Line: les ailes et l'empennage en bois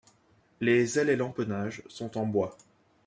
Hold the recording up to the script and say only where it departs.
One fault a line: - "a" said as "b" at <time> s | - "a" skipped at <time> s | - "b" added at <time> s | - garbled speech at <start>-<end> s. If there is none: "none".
- "sont" added at 1.9 s